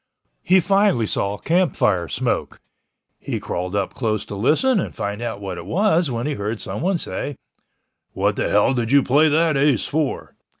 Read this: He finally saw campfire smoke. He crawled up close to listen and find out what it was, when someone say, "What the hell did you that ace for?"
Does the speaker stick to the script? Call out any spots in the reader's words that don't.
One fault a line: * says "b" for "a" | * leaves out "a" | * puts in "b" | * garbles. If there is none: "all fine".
* puts in "he heard"
* puts in "play"